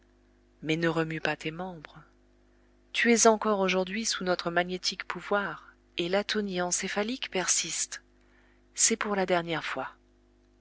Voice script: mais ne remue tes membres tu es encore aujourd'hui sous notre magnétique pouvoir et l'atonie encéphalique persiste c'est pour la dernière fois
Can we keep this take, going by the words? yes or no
no